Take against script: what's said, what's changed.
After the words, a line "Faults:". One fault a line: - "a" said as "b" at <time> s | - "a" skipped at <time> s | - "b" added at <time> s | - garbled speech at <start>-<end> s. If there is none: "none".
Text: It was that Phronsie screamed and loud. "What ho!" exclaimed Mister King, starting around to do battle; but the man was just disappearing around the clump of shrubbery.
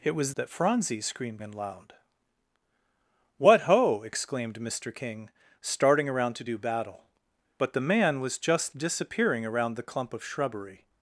It was that Phronsie screamed and loud. "What ho!" exclaimed Mister King, starting around to do battle; but the man was just disappearing around the clump of shrubbery.
Faults:
none